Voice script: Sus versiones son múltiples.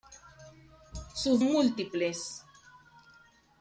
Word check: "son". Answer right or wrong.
wrong